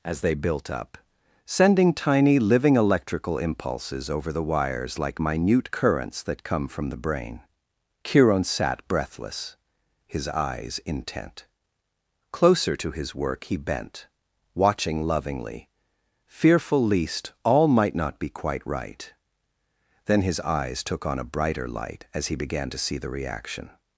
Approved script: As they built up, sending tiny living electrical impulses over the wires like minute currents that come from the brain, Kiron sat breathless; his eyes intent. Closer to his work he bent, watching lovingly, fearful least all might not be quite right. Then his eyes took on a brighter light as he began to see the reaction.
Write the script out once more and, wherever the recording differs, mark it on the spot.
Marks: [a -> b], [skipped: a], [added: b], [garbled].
As they built up, sending tiny living electrical impulses over the wires like minute currents that come from the brain, Kiron sat breathless; his eyes intent. Closer to his work he bent, watching lovingly, fearful least all might not be quite right. Then his eyes took on a brighter light as he began to see the reaction.